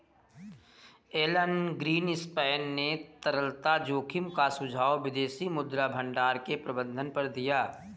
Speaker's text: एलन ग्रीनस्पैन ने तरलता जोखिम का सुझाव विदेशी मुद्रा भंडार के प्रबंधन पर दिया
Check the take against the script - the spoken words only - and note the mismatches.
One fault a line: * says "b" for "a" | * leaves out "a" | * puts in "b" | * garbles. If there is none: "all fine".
all fine